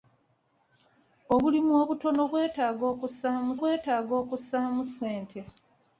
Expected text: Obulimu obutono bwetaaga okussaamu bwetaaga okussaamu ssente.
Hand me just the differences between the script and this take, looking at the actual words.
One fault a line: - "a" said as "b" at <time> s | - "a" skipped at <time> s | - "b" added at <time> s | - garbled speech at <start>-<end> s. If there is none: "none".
none